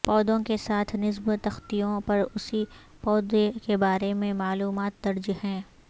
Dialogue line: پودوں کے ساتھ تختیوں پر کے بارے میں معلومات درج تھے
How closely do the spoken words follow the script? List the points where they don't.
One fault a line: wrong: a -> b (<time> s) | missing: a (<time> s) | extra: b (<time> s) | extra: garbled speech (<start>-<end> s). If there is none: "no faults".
extra: نصب (0.9 s)
extra: اسی پودے (2.4 s)
wrong: تھے -> ہیں (5.4 s)